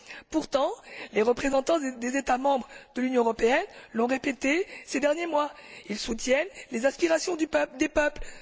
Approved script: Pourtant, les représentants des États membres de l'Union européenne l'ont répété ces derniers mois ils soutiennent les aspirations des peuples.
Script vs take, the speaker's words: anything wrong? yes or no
no